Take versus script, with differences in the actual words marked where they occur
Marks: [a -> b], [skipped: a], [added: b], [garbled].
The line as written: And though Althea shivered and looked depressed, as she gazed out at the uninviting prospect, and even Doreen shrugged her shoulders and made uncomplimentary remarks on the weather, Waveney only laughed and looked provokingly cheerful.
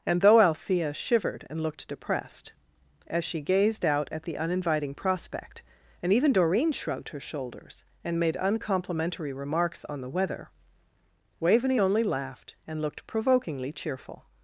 And though Althea shivered and looked depressed, as she gazed out at the uninviting prospect, and even Doreen shrugged her shoulders and made uncomplimentary remarks on the weather, Waveney only laughed and looked provokingly cheerful.